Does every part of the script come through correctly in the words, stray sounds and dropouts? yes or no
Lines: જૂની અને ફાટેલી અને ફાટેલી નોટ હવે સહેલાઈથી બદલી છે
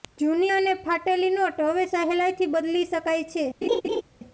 no